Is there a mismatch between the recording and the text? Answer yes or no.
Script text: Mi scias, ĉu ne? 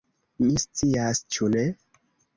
no